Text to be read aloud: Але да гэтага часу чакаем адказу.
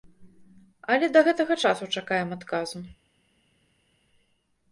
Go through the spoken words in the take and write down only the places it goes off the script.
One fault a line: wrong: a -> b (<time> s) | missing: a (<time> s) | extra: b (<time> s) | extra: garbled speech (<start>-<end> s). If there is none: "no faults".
no faults